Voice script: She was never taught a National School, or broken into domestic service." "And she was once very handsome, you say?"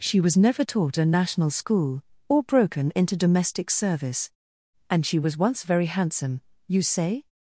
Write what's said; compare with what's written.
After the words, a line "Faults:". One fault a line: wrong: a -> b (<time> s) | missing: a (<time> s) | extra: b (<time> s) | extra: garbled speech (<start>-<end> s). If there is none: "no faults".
She was never taught a National School, or broken into domestic service." "And she was once very handsome, you say?"
Faults:
no faults